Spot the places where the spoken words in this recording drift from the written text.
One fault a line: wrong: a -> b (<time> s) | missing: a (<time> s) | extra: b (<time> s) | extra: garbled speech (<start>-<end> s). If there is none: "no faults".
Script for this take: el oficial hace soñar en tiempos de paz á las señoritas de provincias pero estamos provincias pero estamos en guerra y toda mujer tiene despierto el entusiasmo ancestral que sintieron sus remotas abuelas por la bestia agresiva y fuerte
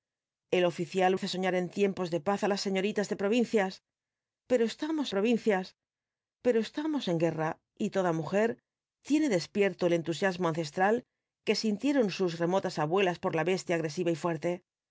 no faults